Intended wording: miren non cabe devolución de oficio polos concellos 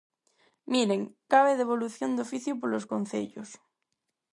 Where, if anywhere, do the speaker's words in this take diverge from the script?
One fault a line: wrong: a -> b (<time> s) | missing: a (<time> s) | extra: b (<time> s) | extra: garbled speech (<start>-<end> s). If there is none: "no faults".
missing: non (1.0 s)